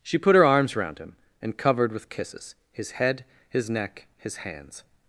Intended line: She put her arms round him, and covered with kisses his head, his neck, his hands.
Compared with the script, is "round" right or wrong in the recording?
right